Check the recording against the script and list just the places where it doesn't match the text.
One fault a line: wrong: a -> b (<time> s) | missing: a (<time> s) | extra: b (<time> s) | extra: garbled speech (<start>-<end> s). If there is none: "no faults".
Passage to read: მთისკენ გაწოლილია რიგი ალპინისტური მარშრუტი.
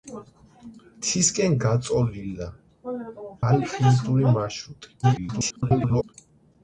missing: რიგი (2.5 s)
extra: garbled speech (5.0-6.1 s)